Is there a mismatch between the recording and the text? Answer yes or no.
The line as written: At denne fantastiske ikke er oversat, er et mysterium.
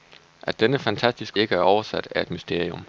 no